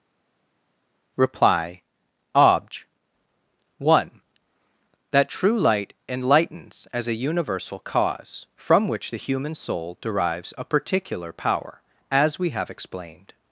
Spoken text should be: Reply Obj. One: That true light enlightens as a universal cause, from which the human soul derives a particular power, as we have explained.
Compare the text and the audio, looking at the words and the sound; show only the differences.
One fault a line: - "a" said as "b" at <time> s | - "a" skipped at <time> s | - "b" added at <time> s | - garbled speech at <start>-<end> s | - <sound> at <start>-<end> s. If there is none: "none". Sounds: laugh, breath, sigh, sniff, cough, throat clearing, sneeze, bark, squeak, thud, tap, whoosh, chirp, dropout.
none